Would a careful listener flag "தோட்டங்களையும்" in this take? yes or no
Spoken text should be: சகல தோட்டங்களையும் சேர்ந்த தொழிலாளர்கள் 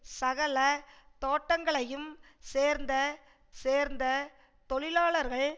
no